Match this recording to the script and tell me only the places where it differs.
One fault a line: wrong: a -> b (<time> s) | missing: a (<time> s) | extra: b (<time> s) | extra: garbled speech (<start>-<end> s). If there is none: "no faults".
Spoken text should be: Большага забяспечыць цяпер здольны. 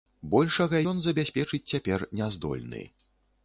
extra: ён (0.9 s)
extra: не (2.2 s)